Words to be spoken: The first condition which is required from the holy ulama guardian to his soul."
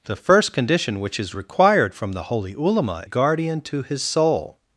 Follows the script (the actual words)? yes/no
yes